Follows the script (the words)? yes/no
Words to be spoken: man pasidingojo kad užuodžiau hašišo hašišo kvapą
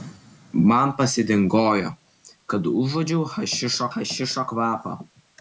yes